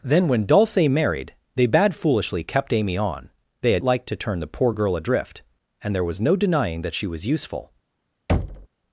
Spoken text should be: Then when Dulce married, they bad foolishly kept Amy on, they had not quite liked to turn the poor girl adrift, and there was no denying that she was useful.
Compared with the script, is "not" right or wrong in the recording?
wrong